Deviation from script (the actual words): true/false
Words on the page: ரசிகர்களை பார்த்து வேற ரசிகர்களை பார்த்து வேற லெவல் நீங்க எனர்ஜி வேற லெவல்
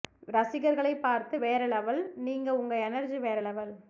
true